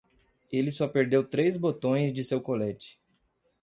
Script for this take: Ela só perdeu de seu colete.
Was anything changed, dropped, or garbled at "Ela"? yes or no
yes